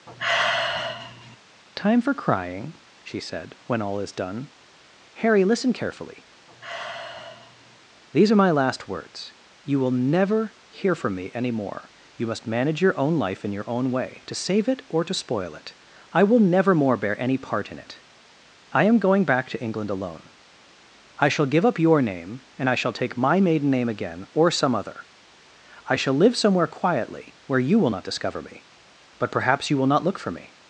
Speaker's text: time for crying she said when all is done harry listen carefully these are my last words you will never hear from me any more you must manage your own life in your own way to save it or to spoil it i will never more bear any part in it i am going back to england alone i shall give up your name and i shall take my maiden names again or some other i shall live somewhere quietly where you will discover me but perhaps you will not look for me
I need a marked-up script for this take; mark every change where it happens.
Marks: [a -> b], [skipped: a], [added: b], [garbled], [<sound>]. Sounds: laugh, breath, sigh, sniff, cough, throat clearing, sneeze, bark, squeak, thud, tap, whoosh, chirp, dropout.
[sigh] time for crying she said when all is done harry listen carefully [sigh] these are my last words you will never hear from me any more you must manage your own life in your own way to save it or to spoil it i will never more bear any part in it i am going back to england alone i shall give up your name and i shall take my maiden [names -> name] again or some other i shall live somewhere quietly where you will [added: not] discover me but perhaps you will not look for me